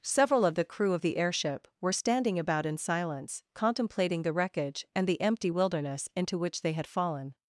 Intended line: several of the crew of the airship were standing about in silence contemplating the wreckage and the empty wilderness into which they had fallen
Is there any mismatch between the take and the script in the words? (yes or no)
no